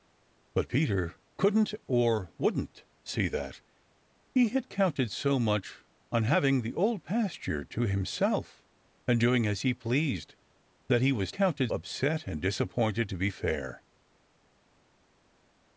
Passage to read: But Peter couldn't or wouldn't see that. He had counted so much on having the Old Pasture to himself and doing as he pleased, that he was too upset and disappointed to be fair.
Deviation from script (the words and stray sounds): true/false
true